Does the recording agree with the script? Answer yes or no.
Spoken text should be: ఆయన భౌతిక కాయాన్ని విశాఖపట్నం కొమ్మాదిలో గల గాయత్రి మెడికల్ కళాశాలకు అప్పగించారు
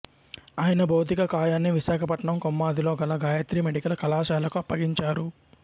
yes